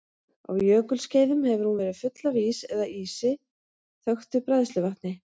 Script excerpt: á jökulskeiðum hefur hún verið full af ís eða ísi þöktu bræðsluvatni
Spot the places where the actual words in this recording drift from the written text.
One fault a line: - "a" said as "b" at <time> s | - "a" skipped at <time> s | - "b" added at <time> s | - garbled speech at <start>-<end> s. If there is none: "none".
none